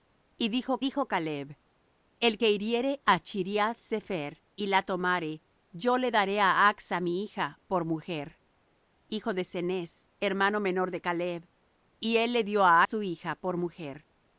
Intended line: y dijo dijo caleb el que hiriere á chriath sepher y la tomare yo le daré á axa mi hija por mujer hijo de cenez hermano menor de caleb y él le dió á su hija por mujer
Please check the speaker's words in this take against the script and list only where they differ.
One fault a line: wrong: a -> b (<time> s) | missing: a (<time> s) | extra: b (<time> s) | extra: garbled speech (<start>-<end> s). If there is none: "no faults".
no faults